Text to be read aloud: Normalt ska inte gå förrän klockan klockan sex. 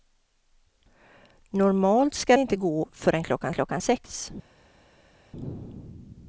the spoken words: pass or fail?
pass